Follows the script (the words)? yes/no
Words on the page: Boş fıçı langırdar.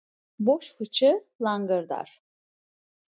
yes